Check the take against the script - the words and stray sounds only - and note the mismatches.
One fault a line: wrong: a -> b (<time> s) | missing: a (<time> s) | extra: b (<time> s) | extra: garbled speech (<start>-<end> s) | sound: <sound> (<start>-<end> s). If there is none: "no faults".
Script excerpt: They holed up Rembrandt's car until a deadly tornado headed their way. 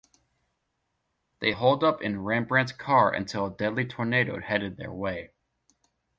extra: in (2.0 s)